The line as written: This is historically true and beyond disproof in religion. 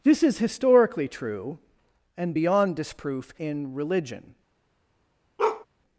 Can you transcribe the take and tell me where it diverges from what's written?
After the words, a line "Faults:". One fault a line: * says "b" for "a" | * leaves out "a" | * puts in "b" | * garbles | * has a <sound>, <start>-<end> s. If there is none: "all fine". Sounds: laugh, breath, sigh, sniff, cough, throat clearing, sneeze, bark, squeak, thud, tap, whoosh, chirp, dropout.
This is historically true and beyond disproof in religion.
Faults:
* has a bark, 5.4-5.7 s